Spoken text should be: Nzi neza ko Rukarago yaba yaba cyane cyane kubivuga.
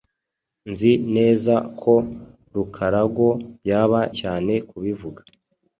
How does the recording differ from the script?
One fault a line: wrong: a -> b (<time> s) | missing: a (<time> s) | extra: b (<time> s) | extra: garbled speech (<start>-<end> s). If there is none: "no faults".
missing: yaba cyane (4.0 s)